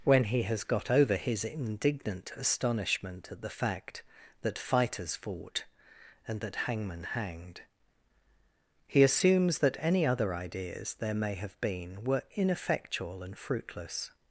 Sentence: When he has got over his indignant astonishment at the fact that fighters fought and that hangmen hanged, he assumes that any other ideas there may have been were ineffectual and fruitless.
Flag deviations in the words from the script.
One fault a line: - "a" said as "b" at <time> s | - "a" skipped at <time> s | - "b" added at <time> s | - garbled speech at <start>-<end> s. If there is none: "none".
none